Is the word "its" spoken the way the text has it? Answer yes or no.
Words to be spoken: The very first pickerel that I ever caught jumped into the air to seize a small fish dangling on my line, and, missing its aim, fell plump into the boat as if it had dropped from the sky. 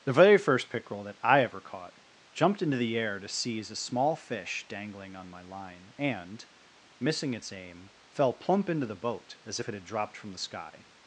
yes